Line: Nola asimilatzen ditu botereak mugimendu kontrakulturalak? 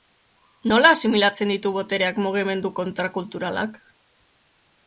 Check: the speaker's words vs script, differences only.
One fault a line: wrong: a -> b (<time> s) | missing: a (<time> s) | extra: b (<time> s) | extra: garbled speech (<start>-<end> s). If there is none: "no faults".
no faults